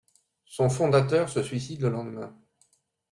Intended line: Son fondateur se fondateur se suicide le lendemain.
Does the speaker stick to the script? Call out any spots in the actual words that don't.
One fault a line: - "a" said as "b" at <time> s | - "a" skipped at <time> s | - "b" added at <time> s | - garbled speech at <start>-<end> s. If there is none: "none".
- "fondateur se" skipped at 1.4 s